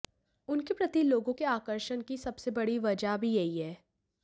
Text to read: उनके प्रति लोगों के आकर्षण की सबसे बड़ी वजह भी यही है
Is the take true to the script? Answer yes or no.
yes